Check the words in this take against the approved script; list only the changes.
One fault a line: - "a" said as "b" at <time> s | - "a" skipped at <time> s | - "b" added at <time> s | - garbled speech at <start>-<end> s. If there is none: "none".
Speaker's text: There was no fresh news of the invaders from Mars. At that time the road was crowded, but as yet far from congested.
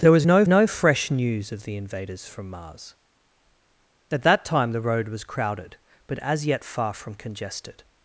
- "no" added at 0.5 s